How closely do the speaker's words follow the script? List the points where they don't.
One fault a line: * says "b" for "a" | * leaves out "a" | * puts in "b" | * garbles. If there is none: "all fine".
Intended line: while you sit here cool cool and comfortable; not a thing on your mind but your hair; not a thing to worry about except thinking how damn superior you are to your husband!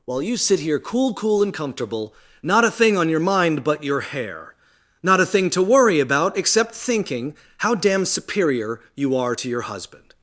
all fine